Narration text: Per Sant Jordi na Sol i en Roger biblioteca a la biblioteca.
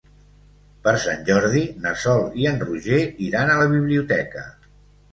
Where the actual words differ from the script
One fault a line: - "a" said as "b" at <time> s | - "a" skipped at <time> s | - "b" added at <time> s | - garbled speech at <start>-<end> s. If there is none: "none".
- "biblioteca" said as "iran" at 3.3 s